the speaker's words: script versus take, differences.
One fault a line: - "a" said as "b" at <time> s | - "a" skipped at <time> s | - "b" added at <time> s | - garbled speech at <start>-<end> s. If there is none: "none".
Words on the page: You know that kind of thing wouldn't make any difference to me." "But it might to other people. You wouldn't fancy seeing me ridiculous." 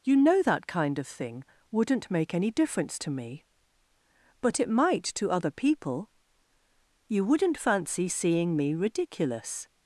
none